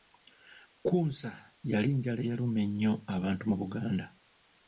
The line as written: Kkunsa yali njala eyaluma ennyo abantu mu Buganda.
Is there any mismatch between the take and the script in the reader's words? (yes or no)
no